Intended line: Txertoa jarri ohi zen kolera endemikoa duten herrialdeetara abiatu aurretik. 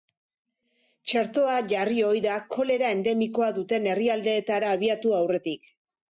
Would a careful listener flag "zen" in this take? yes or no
yes